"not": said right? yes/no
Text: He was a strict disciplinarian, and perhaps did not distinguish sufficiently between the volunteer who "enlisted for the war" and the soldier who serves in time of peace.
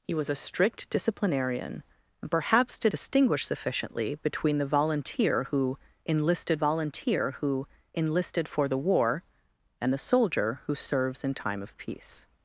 no